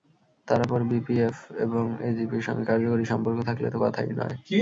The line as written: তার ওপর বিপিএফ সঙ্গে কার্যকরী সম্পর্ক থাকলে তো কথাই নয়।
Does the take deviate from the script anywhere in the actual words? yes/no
yes